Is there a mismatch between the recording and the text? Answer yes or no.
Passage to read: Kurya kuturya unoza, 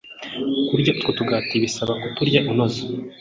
yes